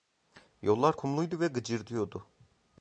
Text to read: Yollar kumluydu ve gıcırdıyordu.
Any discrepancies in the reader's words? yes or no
no